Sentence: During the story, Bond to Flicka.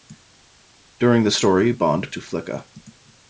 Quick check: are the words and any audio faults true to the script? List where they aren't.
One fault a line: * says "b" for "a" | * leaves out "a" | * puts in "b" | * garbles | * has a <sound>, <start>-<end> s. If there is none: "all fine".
all fine